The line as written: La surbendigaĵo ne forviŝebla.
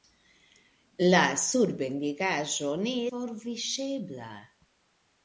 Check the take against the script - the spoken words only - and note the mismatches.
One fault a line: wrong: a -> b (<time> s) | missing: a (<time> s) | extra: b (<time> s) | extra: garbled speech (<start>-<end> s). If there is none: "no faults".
no faults